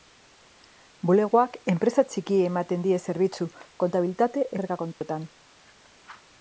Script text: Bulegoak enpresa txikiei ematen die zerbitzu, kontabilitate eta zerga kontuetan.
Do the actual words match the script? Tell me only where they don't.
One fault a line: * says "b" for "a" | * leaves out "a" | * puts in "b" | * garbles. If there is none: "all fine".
* leaves out "eta"